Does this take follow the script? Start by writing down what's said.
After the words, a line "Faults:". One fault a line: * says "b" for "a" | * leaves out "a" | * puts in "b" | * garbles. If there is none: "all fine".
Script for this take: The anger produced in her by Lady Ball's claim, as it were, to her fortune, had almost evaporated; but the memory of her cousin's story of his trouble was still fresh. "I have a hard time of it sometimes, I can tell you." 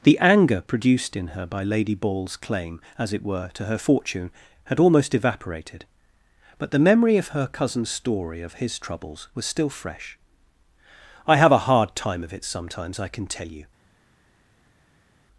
The anger produced in her by Lady Ball's claim, as it were, to her fortune, had almost evaporated; but the memory of her cousin's story of his troubles was still fresh. "I have a hard time of it sometimes, I can tell you."
Faults:
* says "troubles" for "trouble"